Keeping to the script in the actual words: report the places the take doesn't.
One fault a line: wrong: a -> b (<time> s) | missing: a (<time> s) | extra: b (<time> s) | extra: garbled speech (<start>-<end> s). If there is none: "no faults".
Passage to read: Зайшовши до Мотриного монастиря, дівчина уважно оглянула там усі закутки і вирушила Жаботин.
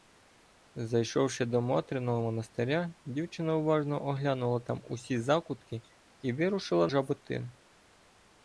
no faults